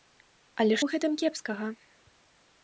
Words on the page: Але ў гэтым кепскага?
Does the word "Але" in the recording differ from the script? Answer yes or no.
no